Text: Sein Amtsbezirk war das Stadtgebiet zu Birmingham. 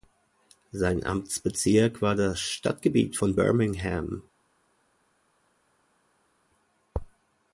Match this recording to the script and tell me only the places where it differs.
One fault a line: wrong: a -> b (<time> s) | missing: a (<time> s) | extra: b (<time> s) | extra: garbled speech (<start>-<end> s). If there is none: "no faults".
wrong: zu -> von (3.2 s)